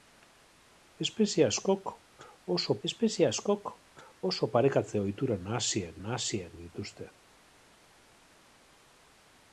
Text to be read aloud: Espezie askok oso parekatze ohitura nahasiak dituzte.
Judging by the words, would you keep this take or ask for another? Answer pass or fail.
fail